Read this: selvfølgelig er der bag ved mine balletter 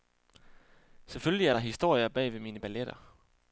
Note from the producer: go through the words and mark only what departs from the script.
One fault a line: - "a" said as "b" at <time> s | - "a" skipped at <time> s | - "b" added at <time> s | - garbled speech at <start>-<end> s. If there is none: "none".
- "historier" added at 1.6 s